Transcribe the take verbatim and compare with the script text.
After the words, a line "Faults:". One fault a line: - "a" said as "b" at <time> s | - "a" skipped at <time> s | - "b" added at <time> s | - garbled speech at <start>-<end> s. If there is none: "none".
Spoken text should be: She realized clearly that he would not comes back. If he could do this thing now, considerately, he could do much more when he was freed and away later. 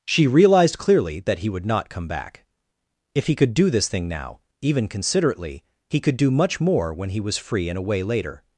She realized clearly that he would not come back. If he could do this thing now, even considerately, he could do much more when he was free and away later.
Faults:
- "comes" said as "come" at 1.9 s
- "even" added at 4.6 s
- "freed" said as "free" at 7.4 s